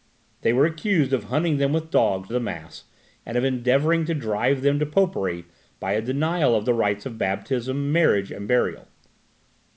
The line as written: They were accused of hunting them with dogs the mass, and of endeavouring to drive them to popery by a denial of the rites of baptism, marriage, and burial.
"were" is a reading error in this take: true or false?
false